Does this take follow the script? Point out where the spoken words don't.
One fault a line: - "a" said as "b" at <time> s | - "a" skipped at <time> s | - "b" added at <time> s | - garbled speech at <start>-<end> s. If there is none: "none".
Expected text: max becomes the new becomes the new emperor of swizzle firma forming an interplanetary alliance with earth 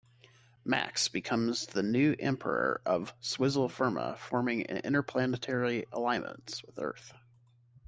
- "becomes the new" skipped at 2.1 s